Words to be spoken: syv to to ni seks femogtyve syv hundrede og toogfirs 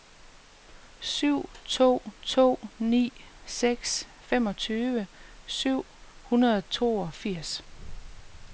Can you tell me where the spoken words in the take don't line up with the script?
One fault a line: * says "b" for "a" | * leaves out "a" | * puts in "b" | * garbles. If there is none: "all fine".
all fine